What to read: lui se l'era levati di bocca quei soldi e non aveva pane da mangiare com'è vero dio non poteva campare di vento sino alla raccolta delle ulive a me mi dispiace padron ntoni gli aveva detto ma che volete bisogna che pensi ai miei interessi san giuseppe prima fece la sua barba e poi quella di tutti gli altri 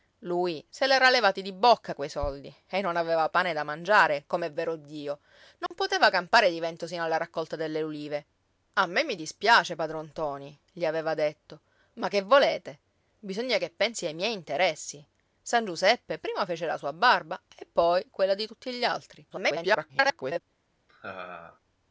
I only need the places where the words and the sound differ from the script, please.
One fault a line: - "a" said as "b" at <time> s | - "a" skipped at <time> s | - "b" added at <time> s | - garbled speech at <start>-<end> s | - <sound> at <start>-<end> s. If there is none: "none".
- dropout at 5.7-5.7 s
- garbled speech at 19.3-20.4 s
- laugh at 20.9-21.6 s